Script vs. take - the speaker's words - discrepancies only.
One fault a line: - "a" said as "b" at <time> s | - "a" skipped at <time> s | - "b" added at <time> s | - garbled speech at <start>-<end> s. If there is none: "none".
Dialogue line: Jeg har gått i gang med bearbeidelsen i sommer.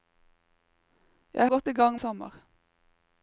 - "har" skipped at 1.5 s
- "med bearbeidelsen i" skipped at 2.0 s